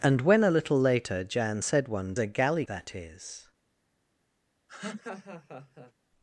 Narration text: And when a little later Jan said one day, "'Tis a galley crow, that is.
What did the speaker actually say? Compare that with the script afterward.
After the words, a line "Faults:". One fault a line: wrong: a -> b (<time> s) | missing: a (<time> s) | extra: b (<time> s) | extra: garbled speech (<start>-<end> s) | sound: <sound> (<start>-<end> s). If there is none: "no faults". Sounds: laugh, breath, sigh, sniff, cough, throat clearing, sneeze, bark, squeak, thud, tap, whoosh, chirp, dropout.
And when a little later Jan said one a galley that is.
Faults:
missing: day Tis (2.1 s)
missing: crow (2.6 s)
sound: laugh (4.7-5.9 s)